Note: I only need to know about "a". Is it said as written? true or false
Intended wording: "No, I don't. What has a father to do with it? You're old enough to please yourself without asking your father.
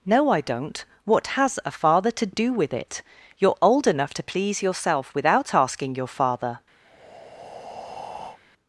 true